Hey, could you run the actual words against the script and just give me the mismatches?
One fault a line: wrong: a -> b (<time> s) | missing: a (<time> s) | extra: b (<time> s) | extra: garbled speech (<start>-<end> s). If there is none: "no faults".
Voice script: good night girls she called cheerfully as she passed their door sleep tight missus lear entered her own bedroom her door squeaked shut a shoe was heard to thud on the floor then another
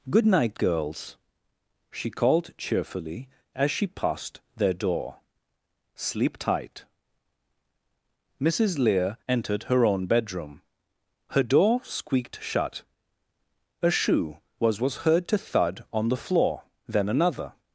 extra: was (14.8 s)